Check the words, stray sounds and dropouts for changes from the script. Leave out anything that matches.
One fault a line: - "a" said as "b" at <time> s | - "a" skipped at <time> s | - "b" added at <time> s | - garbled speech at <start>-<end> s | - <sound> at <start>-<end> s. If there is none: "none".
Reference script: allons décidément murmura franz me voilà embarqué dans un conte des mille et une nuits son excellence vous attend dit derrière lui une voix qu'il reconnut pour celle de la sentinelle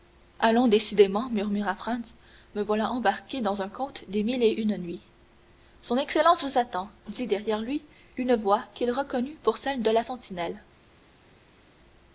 none